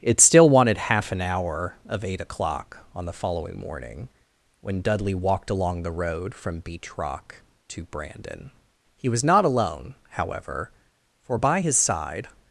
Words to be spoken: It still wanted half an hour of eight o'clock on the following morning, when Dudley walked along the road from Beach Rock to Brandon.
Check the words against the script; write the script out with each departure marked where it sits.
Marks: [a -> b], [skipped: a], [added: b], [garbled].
It still wanted half an hour of eight o'clock on the following morning, when Dudley walked along the road from Beach Rock to Brandon. [added: He was not alone however for by his side]